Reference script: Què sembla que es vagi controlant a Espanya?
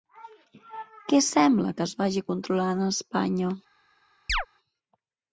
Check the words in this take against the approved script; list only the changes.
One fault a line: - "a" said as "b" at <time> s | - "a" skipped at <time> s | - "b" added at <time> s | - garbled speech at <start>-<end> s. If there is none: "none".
none